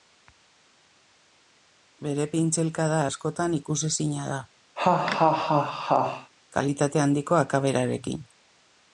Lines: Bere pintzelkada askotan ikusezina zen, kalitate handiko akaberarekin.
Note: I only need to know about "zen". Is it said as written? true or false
false